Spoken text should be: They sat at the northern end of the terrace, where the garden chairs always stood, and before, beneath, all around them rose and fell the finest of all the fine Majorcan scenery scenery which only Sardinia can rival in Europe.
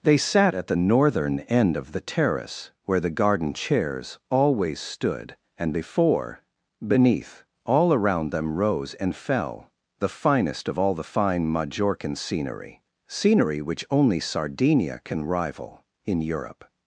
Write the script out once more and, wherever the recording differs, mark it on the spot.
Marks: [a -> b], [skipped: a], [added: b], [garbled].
They sat at the northern end of the terrace, where the garden chairs always stood, and before, beneath, all around them rose and fell the finest of all the fine Majorcan scenery scenery which only Sardinia can rival in Europe.